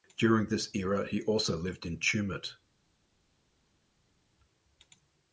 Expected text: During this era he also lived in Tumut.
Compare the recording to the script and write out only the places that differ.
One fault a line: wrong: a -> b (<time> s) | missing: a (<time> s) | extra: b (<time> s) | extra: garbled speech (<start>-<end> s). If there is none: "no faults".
no faults